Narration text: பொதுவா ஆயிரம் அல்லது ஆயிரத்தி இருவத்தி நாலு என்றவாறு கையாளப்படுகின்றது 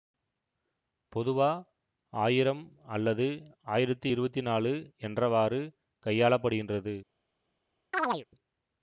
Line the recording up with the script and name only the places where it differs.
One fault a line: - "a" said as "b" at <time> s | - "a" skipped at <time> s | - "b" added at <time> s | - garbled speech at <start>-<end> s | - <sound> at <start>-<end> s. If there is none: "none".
- chirp at 7.9-8.2 s